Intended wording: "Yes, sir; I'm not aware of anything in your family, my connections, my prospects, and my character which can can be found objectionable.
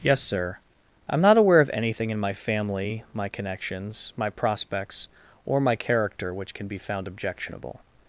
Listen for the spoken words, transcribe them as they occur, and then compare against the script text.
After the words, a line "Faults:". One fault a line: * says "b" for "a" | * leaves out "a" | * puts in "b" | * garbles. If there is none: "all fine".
"Yes, sir; I'm not aware of anything in my family, my connections, my prospects, or my character which can be found objectionable.
Faults:
* says "my" for "your"
* says "or" for "and"
* leaves out "can"